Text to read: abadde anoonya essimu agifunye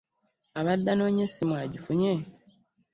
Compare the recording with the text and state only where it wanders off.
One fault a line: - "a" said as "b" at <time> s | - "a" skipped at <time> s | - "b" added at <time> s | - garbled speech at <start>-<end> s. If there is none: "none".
none